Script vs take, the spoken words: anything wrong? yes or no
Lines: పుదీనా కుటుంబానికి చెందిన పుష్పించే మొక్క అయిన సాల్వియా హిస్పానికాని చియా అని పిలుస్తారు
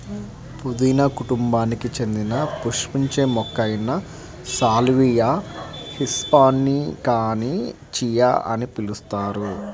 no